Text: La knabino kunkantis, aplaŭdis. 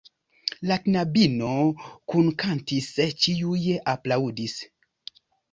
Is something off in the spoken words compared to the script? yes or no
yes